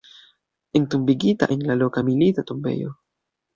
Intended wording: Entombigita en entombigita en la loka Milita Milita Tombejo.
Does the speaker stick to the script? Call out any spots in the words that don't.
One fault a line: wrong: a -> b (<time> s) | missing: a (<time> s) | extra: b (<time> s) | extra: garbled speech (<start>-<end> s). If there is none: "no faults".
missing: entombigita en (1.7 s)
missing: Milita (2.4 s)